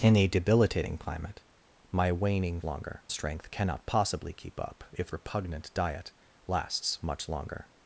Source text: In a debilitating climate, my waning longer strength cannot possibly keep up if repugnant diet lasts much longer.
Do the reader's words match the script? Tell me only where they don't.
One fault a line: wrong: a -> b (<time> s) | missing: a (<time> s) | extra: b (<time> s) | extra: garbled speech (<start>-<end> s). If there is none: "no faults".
no faults